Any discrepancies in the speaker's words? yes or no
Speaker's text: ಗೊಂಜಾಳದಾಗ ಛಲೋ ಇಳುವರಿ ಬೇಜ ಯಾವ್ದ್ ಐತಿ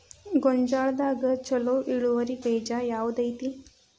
no